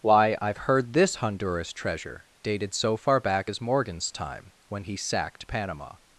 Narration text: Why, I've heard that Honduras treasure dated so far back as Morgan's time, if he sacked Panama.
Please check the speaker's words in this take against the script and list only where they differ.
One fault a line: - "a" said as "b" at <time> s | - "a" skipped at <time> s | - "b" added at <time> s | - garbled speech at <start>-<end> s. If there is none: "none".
- "that" said as "this" at 0.9 s
- "if" said as "when" at 4.7 s